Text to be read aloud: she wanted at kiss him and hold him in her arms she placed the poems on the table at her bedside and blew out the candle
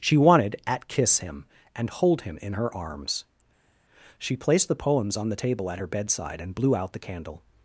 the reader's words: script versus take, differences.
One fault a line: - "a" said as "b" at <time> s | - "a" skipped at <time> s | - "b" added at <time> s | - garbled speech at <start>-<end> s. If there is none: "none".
none